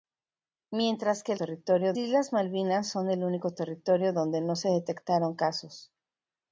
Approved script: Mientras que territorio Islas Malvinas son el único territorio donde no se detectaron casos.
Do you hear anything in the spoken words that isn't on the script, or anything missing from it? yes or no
no